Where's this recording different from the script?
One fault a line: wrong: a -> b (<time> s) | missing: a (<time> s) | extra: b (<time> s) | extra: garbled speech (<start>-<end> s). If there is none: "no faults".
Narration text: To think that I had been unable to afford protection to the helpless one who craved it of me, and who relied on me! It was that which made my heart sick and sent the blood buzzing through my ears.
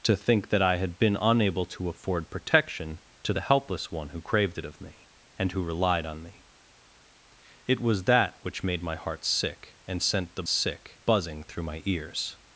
wrong: blood -> sick (10.5 s)